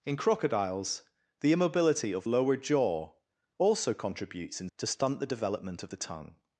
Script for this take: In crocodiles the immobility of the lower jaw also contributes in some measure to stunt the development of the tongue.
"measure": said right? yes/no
no